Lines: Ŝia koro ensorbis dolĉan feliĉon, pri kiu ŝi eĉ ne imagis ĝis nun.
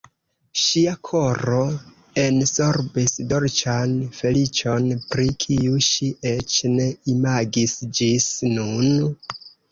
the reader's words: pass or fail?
pass